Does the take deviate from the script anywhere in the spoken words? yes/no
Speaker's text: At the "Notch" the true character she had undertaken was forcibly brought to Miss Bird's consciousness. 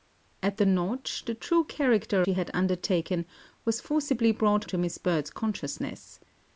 no